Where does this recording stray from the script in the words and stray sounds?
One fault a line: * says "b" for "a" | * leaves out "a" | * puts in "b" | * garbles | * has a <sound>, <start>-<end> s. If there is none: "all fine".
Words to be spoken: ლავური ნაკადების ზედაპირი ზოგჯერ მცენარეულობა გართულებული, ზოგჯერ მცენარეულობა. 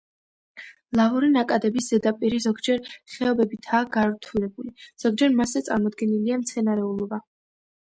* says "ხეობებითაა" for "მცენარეულობა"
* puts in "მასზე წარმოდგენილია"